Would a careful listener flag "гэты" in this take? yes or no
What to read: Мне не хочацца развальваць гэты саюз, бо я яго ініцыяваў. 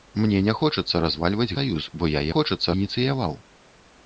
yes